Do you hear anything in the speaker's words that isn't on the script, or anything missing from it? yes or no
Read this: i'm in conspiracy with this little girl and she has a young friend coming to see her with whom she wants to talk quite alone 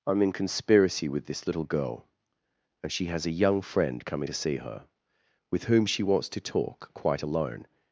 no